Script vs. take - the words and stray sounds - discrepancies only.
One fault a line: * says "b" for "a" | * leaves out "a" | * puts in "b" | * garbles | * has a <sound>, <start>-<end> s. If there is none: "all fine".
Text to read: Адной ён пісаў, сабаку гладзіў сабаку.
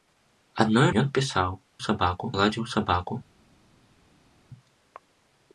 all fine